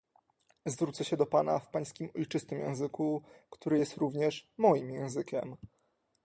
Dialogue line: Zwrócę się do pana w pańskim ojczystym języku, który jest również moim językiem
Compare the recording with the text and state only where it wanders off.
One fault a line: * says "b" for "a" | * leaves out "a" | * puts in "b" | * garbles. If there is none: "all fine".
all fine